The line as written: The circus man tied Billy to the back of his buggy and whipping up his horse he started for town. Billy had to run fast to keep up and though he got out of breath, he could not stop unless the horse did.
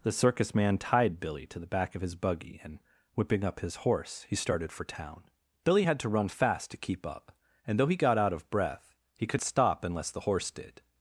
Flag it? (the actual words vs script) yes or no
yes